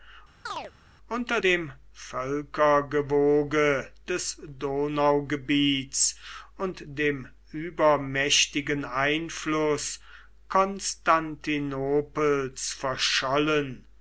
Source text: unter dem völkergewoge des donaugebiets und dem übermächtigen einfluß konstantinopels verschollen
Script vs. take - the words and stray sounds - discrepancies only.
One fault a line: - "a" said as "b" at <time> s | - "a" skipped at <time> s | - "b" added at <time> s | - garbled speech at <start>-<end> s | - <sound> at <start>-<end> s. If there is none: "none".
- chirp at 0.5-0.7 s